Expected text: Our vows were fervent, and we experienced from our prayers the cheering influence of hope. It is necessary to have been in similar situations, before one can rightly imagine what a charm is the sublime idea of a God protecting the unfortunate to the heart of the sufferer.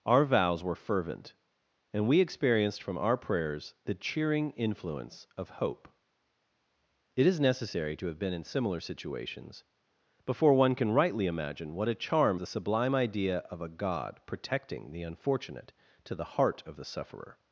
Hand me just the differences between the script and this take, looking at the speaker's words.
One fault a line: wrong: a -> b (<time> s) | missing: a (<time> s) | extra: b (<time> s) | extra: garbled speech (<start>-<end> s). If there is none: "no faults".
missing: is (12.4 s)